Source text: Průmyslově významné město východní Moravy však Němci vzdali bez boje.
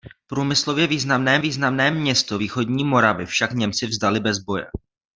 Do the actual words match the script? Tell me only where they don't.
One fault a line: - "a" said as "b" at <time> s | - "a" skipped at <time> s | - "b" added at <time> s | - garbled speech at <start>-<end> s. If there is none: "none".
- "významné" added at 1.4 s